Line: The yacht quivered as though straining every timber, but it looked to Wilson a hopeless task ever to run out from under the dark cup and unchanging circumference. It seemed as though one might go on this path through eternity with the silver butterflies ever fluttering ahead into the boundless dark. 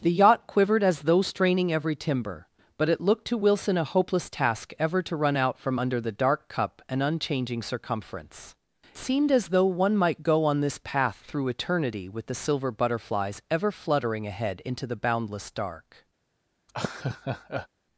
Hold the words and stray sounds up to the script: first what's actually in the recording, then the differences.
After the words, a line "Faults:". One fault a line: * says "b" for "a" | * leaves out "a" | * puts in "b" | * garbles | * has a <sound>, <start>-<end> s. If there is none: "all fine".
The yacht quivered as though straining every timber, but it looked to Wilson a hopeless task ever to run out from under the dark cup and unchanging circumference. Seemed as though one might go on this path through eternity with the silver butterflies ever fluttering ahead into the boundless dark.
Faults:
* leaves out "It"
* has a laugh, 16.7-17.7 s